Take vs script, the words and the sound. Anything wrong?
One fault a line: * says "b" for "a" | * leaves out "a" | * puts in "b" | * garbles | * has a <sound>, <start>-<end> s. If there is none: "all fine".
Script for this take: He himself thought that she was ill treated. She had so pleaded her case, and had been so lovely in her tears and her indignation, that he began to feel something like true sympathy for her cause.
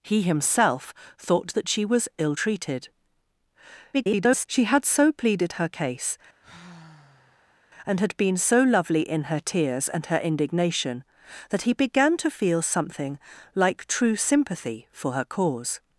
* garbles
* has a sigh, 6.4-7.6 s